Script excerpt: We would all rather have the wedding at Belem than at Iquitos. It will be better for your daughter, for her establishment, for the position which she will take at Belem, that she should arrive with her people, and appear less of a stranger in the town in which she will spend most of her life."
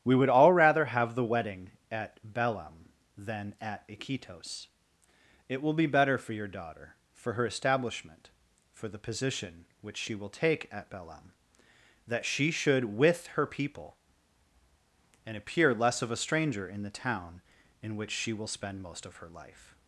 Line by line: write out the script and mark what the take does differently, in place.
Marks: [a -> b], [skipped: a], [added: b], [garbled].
We would all rather have the wedding at Belem than at Iquitos. It will be better for your daughter, for her establishment, for the position which she will take at Belem, that she should [skipped: arrive] with her people, and appear less of a stranger in the town in which she will spend most of her life."